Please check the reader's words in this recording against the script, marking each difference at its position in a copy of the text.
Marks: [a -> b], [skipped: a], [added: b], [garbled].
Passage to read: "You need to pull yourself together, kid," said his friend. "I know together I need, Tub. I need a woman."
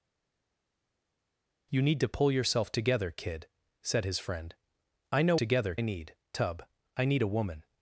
"You need to pull yourself together, kid," said his friend. "I know together I need, Tub. I need a woman."